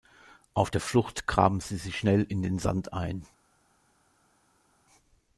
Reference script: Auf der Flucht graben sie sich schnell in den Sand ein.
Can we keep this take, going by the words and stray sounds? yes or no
yes